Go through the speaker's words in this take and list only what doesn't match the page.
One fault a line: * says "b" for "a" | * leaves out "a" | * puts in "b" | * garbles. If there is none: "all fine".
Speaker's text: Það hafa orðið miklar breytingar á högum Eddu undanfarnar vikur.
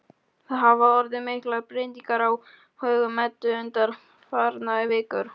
all fine